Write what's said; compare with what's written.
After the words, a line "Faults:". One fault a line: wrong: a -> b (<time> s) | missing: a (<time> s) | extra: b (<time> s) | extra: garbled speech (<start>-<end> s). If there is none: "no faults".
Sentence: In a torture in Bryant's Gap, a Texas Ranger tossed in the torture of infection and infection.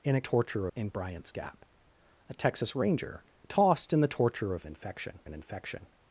In a torture in Bryant's Gap, a Texas Ranger tossed in the torture of infection and infection.
Faults:
no faults